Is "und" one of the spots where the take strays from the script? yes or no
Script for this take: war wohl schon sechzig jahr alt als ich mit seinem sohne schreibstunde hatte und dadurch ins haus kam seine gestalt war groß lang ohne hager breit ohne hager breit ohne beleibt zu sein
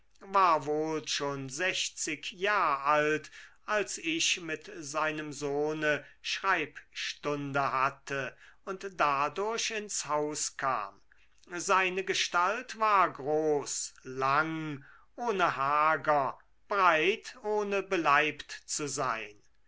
no